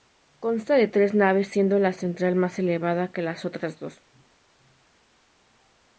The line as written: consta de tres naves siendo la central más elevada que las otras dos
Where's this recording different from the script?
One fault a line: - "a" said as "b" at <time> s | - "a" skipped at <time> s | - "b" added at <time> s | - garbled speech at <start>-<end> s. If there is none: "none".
none